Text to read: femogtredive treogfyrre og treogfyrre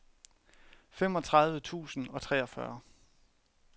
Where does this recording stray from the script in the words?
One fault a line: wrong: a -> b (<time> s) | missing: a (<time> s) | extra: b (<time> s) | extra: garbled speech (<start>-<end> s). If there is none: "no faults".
wrong: treogfyrre -> tusind (1.6 s)